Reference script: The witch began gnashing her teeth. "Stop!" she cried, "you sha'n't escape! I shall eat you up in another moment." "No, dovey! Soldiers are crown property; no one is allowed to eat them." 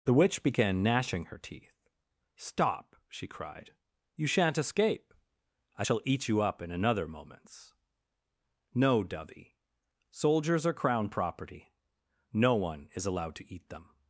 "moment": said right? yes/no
no